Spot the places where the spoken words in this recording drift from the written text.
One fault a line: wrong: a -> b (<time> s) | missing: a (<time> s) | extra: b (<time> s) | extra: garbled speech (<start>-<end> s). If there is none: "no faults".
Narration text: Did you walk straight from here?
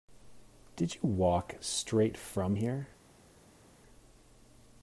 no faults